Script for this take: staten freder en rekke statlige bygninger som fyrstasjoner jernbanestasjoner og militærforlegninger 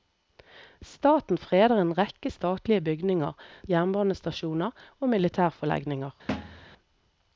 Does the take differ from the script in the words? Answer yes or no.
yes